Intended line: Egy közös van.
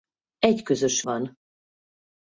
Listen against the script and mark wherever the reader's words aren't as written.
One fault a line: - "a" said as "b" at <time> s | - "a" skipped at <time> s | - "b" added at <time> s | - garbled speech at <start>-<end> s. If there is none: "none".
none